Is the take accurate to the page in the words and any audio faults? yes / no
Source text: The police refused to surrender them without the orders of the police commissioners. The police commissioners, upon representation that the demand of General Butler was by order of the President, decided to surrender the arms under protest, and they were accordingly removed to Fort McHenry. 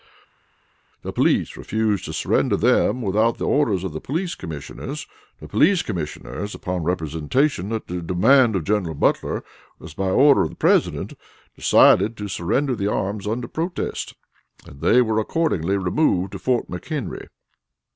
yes